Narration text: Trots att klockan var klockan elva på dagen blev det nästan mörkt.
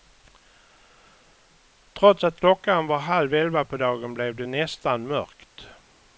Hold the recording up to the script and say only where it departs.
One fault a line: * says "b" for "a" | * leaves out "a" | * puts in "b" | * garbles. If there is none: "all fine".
* says "halv" for "klockan"